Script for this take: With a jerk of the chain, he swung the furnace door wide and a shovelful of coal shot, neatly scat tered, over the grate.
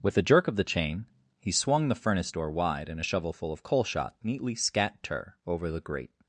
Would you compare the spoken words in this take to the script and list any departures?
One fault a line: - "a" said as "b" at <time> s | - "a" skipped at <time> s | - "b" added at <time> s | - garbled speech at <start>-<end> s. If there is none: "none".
- "tered" said as "ter" at 5.0 s